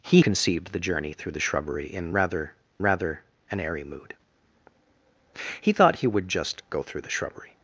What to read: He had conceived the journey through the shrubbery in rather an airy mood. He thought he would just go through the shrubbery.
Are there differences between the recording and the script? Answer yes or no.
yes